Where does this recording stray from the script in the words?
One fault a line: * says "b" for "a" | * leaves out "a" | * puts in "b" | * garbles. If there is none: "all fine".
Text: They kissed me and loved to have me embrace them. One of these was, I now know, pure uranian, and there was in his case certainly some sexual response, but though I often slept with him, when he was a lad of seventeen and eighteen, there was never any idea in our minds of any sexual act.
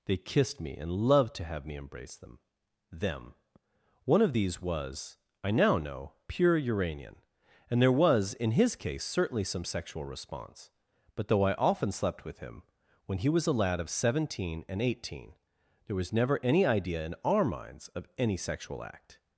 * puts in "them"